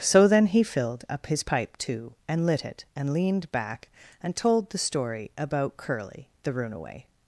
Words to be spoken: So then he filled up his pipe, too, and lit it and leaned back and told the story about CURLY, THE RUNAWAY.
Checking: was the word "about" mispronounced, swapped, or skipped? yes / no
no